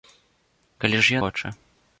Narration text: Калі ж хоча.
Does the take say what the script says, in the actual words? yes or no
yes